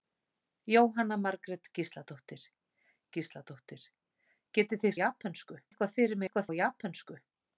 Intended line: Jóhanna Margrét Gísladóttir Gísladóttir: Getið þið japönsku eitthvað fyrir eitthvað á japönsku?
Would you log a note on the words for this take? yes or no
no